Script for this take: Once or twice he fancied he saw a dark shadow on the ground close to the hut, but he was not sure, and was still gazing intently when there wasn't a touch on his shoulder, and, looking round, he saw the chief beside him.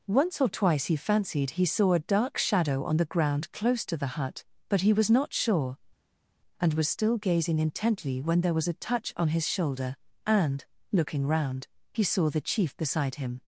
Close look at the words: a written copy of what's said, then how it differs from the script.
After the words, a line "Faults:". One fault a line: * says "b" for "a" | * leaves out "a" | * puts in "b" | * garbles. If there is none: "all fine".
Once or twice he fancied he saw a dark shadow on the ground close to the hut, but he was not sure, and was still gazing intently when there was a touch on his shoulder, and, looking round, he saw the chief beside him.
Faults:
* says "was" for "wasn't"